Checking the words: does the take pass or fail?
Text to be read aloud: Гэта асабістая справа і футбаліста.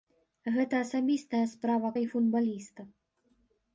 pass